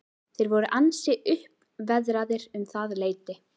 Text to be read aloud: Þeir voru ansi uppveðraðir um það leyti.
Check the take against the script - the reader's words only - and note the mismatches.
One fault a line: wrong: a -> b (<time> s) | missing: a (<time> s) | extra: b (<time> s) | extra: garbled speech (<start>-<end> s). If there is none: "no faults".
no faults